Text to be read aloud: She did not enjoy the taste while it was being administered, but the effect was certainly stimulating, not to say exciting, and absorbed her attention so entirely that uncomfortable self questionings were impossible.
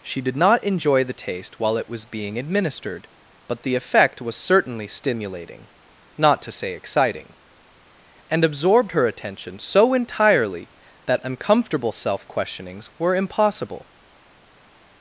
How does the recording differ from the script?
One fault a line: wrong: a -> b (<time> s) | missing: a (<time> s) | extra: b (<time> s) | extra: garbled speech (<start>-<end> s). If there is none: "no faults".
no faults